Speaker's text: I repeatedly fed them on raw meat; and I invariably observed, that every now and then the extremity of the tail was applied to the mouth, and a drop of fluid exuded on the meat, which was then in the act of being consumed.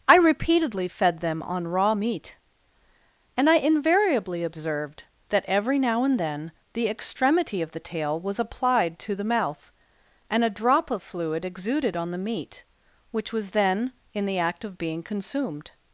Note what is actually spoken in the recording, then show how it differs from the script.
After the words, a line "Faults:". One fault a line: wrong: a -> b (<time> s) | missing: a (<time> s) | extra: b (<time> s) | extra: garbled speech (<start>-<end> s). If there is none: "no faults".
I repeatedly fed them on raw meat; and I invariably observed, that every now and then the extremity of the tail was applied to the mouth, and a drop of fluid exuded on the meat, which was then in the act of being consumed.
Faults:
no faults